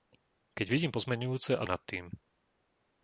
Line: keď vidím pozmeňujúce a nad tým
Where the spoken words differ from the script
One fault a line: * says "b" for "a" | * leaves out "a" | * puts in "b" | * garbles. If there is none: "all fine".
all fine